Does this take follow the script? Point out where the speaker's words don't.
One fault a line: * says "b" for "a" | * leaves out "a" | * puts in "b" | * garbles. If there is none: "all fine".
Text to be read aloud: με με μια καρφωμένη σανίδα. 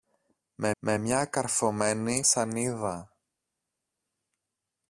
all fine